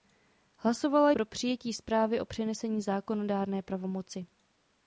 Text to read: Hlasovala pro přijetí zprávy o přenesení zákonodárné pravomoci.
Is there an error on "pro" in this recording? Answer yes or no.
no